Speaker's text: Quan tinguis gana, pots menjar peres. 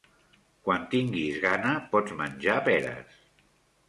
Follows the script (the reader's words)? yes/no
yes